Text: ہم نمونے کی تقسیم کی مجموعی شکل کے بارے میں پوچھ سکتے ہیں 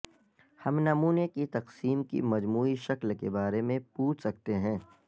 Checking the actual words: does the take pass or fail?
pass